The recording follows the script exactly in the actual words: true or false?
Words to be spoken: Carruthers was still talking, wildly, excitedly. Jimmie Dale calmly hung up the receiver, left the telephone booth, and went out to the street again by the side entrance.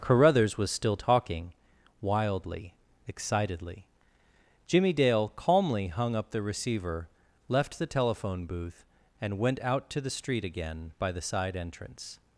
true